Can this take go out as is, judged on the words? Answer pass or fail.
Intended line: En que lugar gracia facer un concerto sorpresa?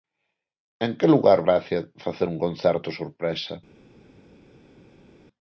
pass